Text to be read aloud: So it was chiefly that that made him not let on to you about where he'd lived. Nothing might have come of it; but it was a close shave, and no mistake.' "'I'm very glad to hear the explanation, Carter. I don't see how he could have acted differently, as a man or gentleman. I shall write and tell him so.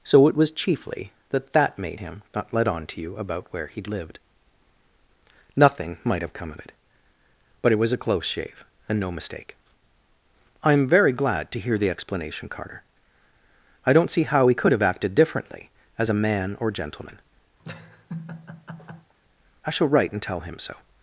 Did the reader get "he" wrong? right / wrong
right